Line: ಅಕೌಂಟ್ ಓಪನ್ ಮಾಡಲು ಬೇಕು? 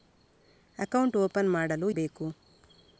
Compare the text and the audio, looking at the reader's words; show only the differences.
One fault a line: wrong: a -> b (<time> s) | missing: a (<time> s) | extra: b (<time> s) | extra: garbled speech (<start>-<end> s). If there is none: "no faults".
no faults